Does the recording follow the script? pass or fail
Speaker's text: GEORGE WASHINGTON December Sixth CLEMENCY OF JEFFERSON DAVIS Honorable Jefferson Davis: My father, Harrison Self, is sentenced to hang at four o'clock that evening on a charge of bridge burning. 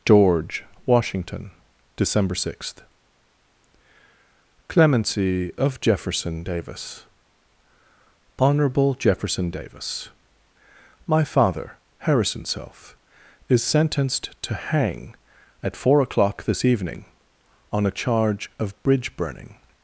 fail